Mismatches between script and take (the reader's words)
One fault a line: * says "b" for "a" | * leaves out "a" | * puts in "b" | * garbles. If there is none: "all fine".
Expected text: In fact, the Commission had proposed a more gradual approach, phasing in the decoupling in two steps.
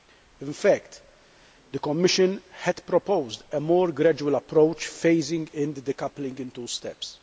all fine